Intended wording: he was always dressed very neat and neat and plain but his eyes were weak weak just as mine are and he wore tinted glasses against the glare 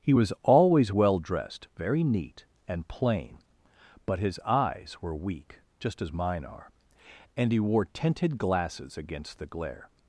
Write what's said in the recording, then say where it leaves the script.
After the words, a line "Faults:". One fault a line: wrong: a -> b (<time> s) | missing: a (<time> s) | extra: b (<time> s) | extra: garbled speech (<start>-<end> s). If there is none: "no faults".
he was always well dressed very neat and plain but his eyes were weak just as mine are and he wore tinted glasses against the glare
Faults:
extra: well (0.9 s)
missing: neat and (2.9 s)
missing: weak (5.6 s)